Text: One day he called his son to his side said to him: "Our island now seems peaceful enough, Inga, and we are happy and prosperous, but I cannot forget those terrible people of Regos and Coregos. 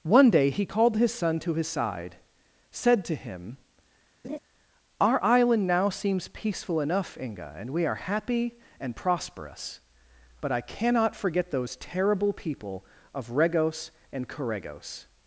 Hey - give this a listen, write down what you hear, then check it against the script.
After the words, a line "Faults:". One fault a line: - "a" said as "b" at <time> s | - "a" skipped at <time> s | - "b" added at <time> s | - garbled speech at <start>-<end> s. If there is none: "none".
One day he called his son to his side said to him: "Our island now seems peaceful enough, Inga, and we are happy and prosperous, but I cannot forget those terrible people of Regos and Coregos.
Faults:
none